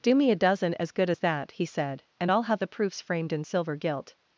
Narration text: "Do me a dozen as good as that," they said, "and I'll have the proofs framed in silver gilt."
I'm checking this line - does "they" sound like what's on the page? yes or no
no